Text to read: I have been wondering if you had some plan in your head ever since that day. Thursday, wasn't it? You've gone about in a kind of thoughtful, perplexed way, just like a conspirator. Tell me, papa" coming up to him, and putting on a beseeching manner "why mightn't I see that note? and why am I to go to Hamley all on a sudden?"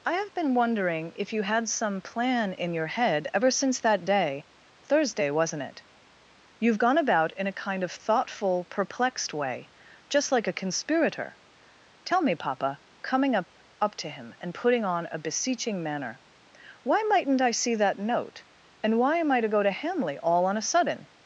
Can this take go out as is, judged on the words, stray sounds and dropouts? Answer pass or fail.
fail